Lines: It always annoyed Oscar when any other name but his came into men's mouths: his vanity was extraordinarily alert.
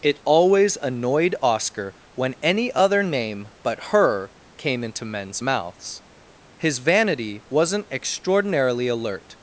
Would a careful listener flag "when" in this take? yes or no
no